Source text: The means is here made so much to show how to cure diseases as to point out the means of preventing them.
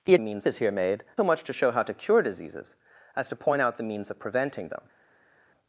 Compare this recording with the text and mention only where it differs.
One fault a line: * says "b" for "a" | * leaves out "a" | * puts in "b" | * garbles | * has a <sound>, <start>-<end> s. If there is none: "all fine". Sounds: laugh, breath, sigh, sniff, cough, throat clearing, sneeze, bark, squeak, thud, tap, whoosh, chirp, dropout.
all fine